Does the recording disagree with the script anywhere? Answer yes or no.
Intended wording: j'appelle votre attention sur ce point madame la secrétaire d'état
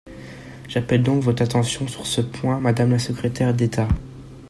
yes